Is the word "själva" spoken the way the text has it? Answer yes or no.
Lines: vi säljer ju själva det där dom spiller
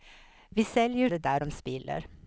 no